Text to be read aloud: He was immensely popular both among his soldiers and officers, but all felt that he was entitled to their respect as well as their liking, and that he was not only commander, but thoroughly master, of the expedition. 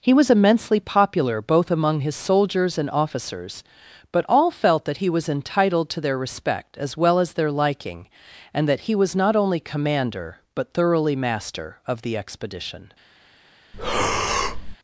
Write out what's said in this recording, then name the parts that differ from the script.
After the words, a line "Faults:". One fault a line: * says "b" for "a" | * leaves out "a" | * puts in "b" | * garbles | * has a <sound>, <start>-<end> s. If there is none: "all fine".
He was immensely popular both among his soldiers and officers, but all felt that he was entitled to their respect as well as their liking, and that he was not only commander, but thoroughly master, of the expedition.
Faults:
* has a breath, 13.7-14.8 s